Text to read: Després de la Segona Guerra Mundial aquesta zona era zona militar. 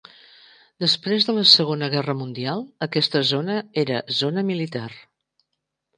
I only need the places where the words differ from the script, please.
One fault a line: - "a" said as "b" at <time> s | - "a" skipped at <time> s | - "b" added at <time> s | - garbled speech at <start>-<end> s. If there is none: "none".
none